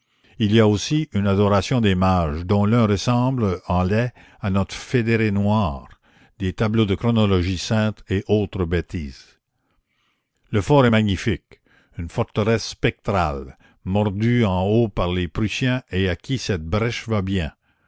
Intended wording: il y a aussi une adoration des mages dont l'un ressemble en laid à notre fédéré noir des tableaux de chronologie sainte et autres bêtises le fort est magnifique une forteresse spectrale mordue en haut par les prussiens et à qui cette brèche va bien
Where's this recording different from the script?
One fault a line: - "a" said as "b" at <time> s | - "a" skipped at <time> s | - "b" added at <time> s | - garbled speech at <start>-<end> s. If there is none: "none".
none